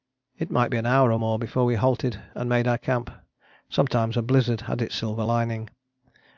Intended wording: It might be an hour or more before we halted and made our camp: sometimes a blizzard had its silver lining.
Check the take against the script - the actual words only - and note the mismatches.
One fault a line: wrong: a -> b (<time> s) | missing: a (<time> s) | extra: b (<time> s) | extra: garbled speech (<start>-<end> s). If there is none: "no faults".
no faults